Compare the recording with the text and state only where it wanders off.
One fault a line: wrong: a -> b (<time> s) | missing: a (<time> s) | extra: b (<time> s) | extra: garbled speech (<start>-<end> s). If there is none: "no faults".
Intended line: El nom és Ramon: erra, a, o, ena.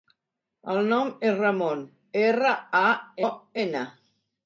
no faults